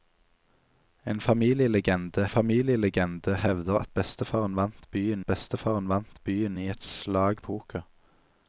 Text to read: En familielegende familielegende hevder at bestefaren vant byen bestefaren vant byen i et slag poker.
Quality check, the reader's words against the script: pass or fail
pass